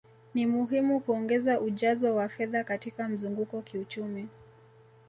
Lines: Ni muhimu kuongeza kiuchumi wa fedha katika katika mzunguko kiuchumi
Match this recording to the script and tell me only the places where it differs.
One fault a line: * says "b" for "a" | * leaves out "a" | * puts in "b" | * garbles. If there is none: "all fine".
* says "ujazo" for "kiuchumi"
* leaves out "katika"